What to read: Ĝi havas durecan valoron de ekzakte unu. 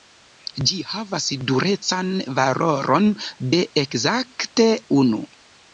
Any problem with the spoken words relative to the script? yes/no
no